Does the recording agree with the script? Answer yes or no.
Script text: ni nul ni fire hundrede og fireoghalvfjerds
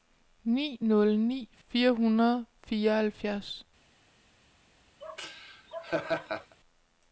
yes